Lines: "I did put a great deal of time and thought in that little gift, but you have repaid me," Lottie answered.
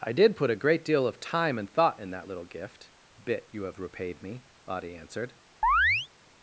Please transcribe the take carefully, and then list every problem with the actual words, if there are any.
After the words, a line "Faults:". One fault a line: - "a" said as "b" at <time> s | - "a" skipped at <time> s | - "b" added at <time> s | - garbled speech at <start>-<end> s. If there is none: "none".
"I did put a great deal of time and thought in that little gift, bit you have repaid me," Lottie answered.
Faults:
- "but" said as "bit" at 3.2 s